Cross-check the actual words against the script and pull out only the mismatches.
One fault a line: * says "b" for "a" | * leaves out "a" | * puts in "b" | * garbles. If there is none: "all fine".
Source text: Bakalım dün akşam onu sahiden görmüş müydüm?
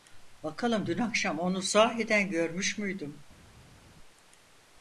all fine